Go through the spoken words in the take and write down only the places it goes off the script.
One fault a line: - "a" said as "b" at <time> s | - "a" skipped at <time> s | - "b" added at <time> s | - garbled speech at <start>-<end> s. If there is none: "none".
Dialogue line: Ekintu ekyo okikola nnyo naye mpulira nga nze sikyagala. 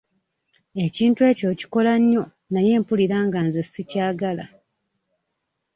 none